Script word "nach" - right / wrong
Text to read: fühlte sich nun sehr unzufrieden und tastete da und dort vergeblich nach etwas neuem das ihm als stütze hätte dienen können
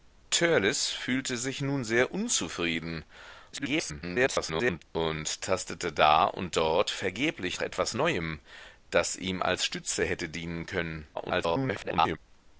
wrong